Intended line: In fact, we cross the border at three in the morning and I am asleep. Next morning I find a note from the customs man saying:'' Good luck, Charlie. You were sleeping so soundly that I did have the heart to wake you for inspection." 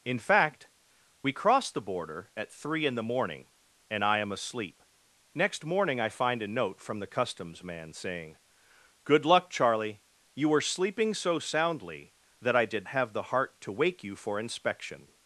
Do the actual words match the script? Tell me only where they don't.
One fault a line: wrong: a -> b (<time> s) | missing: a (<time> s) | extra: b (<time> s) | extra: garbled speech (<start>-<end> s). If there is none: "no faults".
no faults